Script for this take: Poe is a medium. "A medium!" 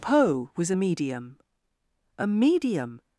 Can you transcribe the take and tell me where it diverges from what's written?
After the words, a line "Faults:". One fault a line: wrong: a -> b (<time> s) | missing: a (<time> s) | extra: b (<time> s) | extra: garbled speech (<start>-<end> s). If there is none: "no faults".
Poe was a medium. "A medium!"
Faults:
wrong: is -> was (0.6 s)